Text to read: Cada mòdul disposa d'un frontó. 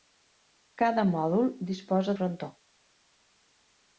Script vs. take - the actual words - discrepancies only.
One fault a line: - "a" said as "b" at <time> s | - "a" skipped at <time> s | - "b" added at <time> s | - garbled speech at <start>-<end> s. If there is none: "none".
- "d'un" skipped at 2.1 s